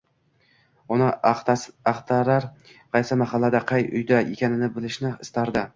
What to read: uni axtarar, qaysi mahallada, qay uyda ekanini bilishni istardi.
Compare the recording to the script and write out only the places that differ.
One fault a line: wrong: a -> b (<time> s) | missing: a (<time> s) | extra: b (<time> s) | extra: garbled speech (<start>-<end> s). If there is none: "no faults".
no faults